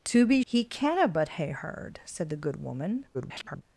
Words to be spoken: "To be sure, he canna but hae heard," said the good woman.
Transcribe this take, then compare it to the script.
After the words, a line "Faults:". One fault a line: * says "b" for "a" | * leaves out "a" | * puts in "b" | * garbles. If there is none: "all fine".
"To be he canna but hae heard," said the good woman. [garbled]
Faults:
* leaves out "sure"
* garbles